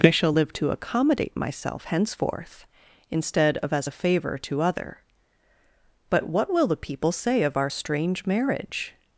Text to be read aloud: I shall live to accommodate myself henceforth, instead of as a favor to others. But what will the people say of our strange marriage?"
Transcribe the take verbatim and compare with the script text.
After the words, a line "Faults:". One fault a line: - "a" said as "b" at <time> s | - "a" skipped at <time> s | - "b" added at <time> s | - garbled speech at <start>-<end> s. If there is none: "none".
I shall live to accommodate myself henceforth, instead of as a favor to other. But what will the people say of our strange marriage?"
Faults:
- "others" said as "other" at 4.6 s